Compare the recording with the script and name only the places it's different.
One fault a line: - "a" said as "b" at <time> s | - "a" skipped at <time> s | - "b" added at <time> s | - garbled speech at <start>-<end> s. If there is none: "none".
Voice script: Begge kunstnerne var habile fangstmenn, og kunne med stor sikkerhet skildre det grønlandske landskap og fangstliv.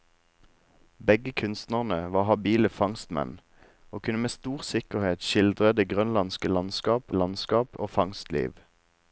- "landskap" added at 7.1 s